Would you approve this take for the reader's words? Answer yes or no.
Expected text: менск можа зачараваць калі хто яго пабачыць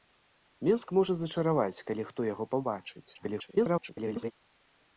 no